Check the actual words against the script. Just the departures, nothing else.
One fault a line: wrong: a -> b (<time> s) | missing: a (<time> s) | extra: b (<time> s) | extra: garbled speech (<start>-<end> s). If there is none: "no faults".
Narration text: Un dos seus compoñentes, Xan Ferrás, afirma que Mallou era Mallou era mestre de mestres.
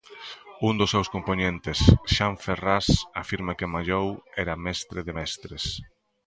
missing: Mallou era (4.6 s)